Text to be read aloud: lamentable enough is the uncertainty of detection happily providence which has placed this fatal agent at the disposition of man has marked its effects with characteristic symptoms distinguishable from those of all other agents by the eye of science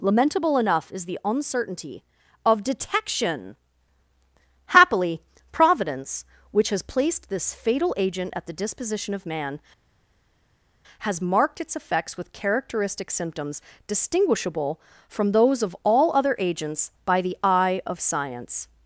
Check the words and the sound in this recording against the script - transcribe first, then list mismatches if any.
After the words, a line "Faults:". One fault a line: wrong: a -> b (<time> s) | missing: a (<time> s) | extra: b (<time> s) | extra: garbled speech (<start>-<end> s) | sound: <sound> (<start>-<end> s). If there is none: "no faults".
lamentable enough is the uncertainty of detection happily providence which has placed this fatal agent at the disposition of man has marked its effects with characteristic symptoms distinguishable from those of all other agents by the eye of science
Faults:
no faults